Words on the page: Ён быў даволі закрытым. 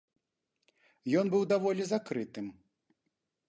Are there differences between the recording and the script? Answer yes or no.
no